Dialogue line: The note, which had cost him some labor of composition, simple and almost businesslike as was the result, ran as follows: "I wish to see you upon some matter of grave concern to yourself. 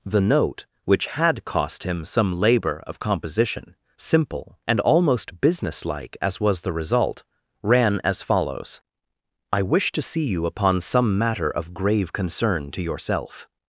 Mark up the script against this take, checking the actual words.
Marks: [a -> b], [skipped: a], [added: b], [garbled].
The note, which had cost him some labor of composition, simple and almost businesslike as was the result, ran as follows: "I wish to see you upon some matter of grave concern to yourself.